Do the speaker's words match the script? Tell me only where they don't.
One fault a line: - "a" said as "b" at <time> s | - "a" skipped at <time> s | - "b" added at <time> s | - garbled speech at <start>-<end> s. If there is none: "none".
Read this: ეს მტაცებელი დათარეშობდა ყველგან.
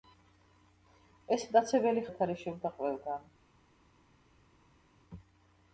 none